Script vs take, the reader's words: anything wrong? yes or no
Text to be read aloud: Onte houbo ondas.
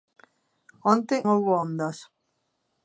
no